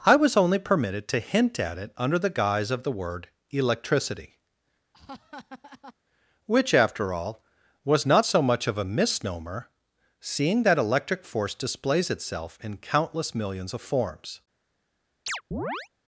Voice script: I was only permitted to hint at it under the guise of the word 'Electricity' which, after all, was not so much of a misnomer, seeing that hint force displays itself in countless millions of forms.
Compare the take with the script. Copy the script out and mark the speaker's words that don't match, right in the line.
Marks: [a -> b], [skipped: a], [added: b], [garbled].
I was only permitted to hint at it under the guise of the word 'Electricity' which, after all, was not so much of a misnomer, seeing that [hint -> electric] force displays itself in countless millions of forms.